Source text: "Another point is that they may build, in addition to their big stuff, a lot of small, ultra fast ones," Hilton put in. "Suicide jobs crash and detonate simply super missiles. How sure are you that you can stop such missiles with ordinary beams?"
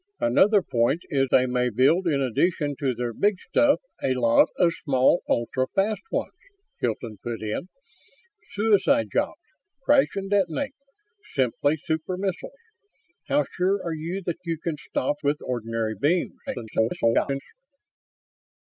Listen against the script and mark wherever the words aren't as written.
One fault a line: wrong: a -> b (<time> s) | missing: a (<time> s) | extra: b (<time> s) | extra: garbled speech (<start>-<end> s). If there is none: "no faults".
missing: that (1.3 s)
missing: such missiles (15.1 s)
extra: garbled speech (16.5-17.4 s)